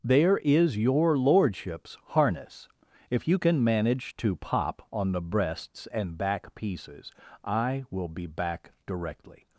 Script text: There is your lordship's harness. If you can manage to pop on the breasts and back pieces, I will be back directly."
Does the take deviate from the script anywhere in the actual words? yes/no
no